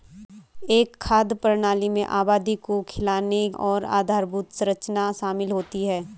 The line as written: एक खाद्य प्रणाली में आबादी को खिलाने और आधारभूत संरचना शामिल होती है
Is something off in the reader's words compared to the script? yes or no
no